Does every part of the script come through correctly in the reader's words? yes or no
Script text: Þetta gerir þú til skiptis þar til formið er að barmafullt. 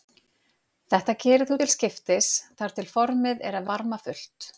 yes